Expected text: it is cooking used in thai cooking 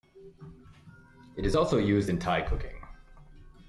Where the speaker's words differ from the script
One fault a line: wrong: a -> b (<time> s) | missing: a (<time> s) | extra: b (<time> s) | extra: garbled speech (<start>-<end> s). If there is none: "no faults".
wrong: cooking -> also (1.5 s)